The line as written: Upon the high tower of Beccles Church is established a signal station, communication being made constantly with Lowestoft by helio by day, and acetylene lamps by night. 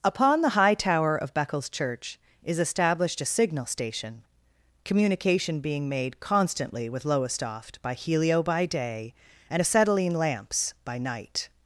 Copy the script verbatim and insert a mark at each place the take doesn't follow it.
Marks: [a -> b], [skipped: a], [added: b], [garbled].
Upon the high tower of Beccles Church is established a signal station, communication being made constantly with Lowestoft by helio by day, and acetylene lamps by night.